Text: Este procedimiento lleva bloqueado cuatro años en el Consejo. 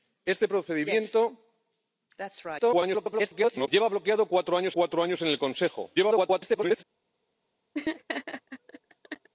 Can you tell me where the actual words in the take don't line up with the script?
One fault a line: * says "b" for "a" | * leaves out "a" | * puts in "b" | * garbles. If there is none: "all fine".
* garbles
* puts in "cuatro años"
* garbles